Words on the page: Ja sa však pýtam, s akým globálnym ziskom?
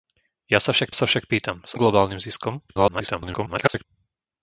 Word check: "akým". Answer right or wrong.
wrong